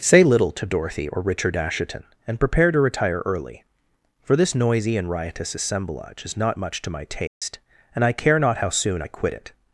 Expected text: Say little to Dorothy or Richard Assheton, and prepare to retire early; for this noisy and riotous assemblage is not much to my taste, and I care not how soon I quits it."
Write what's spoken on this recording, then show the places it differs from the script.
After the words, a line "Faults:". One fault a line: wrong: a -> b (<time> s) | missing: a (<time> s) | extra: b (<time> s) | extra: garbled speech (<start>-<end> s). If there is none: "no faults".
Say little to Dorothy or Richard Assheton, and prepare to retire early; for this noisy and riotous assemblage is not much to my taste, and I care not how soon I quit it."
Faults:
wrong: quits -> quit (9.1 s)